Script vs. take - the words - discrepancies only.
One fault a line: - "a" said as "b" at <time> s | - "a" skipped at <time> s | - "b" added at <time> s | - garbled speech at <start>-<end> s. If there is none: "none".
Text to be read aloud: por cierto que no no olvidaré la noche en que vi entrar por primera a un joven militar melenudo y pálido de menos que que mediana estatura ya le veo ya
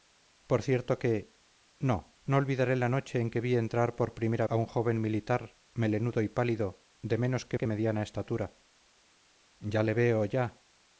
none